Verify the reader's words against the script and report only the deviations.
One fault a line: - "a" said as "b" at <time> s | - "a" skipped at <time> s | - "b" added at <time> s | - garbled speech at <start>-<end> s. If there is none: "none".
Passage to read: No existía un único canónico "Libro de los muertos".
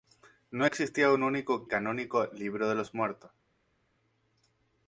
none